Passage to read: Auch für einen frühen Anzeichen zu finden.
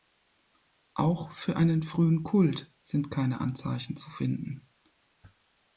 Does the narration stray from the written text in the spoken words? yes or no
yes